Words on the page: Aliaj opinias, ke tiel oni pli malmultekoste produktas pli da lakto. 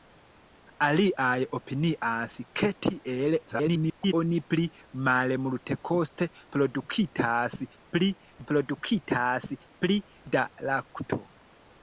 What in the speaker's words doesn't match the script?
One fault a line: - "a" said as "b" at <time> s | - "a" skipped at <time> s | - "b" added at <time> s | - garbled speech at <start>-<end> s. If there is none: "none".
- garbled speech at 3.5-4.1 s
- "produktas pli" added at 8.5 s